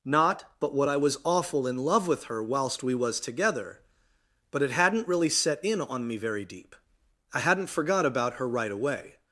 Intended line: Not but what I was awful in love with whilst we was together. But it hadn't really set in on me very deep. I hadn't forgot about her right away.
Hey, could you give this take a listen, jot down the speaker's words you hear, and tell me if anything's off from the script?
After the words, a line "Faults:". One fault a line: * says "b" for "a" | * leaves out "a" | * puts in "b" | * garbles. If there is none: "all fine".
Not but what I was awful in love with her whilst we was together. But it hadn't really set in on me very deep. I hadn't forgot about her right away.
Faults:
* puts in "her"